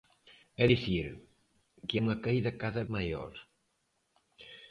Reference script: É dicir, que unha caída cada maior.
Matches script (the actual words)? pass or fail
pass